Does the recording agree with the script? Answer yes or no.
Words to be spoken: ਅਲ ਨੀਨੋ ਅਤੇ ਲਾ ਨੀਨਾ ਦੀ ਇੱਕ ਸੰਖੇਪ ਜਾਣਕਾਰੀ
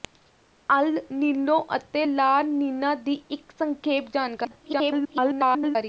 no